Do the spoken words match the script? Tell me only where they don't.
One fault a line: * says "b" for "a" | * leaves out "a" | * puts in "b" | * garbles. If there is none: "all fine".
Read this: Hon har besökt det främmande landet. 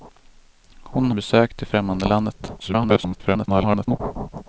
* leaves out "har"
* garbles